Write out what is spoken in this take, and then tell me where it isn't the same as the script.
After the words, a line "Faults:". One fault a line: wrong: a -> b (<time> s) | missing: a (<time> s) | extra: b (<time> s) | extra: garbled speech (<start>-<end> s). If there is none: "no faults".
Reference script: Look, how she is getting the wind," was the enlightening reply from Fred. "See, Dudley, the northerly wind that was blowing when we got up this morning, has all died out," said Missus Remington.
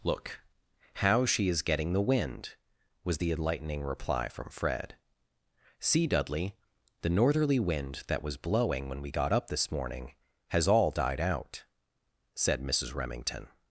Look, how she is getting the wind," was the enlightening reply from Fred. "See, Dudley, the northerly wind that was blowing when we got up this morning, has all died out," said Missus Remington.
Faults:
no faults